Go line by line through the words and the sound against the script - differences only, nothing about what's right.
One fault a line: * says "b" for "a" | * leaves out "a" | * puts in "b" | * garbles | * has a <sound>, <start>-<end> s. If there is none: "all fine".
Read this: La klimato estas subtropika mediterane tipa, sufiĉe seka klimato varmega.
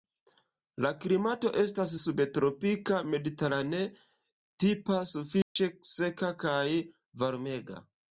* has a dropout, 5.4-5.6 s
* says "kaj" for "klimato"